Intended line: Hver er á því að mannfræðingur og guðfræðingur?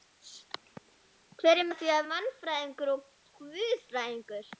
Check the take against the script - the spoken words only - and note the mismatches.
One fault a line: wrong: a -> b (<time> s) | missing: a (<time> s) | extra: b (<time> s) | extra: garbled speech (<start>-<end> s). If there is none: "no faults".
no faults